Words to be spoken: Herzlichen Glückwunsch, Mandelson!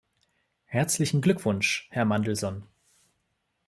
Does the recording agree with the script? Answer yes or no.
no